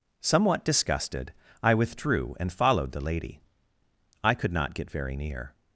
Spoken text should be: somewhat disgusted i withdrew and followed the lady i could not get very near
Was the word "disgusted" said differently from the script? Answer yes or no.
no